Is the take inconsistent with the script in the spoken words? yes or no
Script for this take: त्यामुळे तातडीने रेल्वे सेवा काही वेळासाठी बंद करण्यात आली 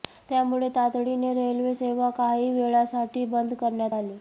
no